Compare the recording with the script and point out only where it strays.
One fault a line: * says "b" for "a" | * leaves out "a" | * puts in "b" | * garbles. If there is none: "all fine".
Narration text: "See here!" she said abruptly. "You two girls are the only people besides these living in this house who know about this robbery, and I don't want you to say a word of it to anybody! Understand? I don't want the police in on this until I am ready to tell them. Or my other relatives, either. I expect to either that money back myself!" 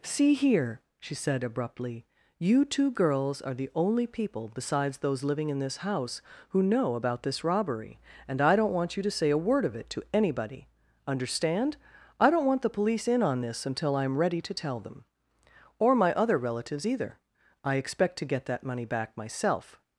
* says "those" for "these"
* says "get" for "either"